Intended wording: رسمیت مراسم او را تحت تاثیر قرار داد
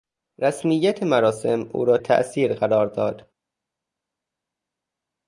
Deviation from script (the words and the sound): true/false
true